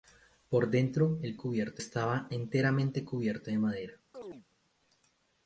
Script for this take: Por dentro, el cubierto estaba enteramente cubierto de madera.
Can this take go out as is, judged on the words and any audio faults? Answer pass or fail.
fail